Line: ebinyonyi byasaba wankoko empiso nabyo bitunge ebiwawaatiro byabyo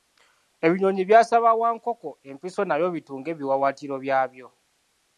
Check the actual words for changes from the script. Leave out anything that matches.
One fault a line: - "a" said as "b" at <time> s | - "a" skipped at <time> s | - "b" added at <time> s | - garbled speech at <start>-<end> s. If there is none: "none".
none